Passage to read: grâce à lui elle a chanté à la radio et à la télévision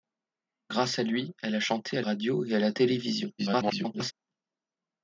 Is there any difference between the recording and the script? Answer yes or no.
yes